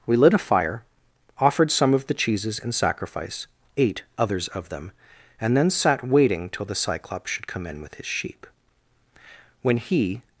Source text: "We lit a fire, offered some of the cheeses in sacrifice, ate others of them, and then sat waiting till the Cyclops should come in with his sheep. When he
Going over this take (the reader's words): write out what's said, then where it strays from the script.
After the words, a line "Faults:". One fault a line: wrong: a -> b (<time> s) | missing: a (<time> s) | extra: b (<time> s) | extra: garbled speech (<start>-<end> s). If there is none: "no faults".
"We lit a fire, offered some of the cheeses in sacrifice, ate others of them, and then sat waiting till the Cyclops should come in with his sheep. When he
Faults:
no faults